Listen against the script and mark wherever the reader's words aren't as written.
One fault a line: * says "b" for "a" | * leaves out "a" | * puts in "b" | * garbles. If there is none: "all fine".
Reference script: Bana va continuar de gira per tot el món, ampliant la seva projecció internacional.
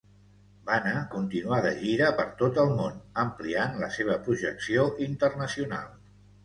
* leaves out "va"